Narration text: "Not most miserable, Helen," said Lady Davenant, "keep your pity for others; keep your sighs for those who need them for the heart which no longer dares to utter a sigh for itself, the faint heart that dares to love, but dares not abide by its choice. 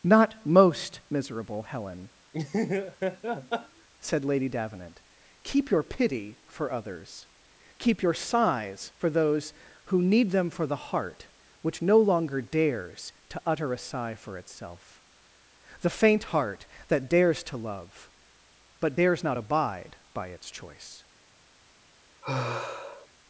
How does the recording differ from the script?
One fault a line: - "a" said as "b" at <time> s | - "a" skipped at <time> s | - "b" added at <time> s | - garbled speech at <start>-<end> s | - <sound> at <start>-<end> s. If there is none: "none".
- laugh at 2.3-3.9 s
- sigh at 22.2-23.1 s